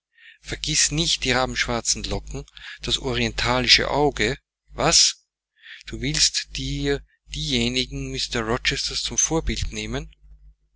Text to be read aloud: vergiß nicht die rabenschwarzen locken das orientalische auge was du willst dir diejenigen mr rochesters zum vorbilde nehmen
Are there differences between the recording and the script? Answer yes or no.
no